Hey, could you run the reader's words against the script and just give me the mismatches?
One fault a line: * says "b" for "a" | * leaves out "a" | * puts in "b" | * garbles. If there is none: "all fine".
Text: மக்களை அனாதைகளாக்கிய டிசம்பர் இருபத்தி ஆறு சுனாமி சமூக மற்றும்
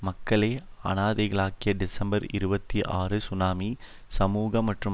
all fine